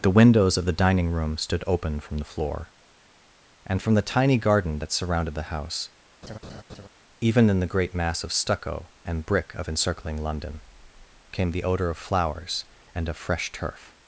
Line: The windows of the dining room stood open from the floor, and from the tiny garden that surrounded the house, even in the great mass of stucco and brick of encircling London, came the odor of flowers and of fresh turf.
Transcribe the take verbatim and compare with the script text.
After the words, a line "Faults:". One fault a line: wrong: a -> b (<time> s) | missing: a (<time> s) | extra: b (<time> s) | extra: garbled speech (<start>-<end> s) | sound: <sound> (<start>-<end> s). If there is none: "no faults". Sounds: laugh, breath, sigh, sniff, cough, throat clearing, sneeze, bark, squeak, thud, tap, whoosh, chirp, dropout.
The windows of the dining room stood open from the floor, and from the tiny garden that surrounded the house, even in the great mass of stucco and brick of encircling London, came the odor of flowers and of fresh turf.
Faults:
sound: laugh (6.2-6.9 s)